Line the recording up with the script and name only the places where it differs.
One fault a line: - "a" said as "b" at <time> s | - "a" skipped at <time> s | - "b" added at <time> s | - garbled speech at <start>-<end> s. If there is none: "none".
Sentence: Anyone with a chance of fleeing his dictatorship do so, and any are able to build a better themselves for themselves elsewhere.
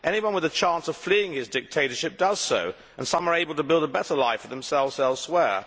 - "do" said as "does" at 2.2 s
- "any" said as "some" at 3.1 s
- "themselves" said as "life" at 4.2 s